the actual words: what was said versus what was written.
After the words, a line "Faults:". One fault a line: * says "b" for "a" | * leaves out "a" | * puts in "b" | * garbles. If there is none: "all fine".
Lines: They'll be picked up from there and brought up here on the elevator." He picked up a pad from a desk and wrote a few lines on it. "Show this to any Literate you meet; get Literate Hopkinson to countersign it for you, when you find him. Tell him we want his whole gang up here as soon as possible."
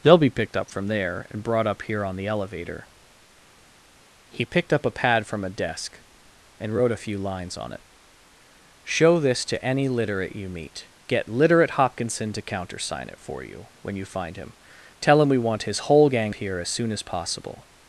They'll be picked up from there and brought up here on the elevator." He picked up a pad from a desk and wrote a few lines on it. "Show this to any Literate you meet; get Literate Hopkinson to countersign it for you, when you find him. Tell him we want his whole gang here as soon as possible."
Faults:
* leaves out "up"